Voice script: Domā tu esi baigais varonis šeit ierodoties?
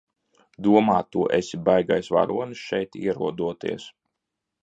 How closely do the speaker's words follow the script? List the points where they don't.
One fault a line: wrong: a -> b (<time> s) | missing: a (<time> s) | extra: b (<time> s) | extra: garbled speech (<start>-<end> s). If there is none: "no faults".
no faults